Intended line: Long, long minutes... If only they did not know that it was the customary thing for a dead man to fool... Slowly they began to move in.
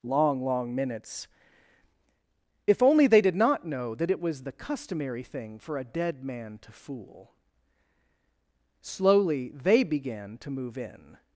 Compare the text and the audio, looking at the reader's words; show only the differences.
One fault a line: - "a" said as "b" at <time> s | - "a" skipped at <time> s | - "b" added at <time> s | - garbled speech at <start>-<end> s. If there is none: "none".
none